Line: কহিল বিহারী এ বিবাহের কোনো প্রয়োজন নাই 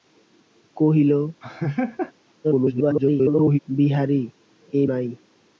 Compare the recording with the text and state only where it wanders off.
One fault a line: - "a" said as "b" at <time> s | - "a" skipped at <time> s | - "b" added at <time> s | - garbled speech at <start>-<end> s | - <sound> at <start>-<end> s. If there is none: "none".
- laugh at 1.4-2.1 s
- garbled speech at 2.4-3.6 s
- "বিবাহের কোনো প্রয়োজন" skipped at 4.8 s